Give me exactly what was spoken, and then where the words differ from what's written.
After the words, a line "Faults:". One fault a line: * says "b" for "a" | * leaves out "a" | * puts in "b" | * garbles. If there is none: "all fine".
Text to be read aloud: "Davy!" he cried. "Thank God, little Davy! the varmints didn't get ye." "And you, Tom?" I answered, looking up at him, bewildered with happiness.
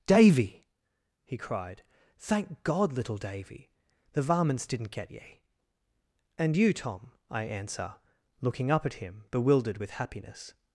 "Davy!" he cried. "Thank God, little Davy! the varmints didn't get ye." "And you, Tom?" I answer, looking up at him, bewildered with happiness.
Faults:
* says "answer" for "answered"